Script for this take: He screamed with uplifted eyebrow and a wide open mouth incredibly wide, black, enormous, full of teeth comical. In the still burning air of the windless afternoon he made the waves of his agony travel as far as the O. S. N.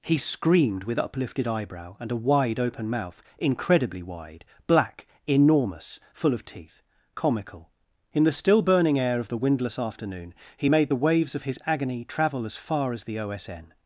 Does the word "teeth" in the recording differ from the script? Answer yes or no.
no